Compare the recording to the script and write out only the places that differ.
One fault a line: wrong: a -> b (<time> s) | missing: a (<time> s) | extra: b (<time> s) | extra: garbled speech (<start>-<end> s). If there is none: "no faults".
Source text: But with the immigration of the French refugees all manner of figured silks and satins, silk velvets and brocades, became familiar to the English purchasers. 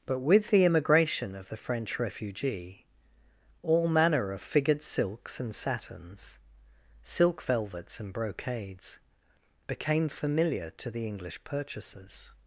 wrong: refugees -> refugee (2.0 s)